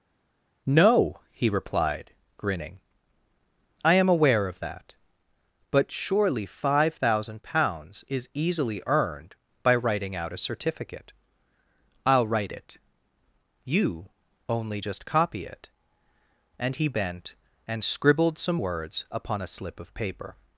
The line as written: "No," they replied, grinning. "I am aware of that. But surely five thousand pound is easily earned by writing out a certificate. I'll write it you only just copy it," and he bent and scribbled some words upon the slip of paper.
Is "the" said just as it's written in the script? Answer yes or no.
no